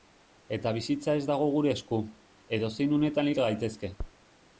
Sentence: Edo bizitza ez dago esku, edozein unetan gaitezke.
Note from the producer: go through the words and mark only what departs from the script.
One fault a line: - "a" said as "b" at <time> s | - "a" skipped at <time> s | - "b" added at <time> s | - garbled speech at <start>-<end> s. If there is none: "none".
- "Edo" said as "Eta" at 0.6 s
- "gure" added at 1.6 s
- "hil" added at 3.3 s